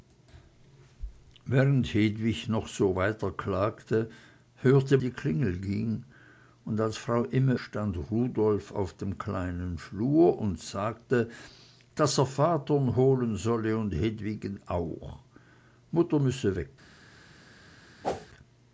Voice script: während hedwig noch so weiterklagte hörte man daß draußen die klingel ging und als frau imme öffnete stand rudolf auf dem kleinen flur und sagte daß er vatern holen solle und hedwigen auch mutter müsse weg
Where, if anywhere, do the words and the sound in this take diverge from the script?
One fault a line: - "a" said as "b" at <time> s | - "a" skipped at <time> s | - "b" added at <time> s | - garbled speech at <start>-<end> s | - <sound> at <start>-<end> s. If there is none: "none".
- "man daß draußen" skipped at 5.0 s
- "öffnete" skipped at 7.6 s
- whoosh at 18.0-18.3 s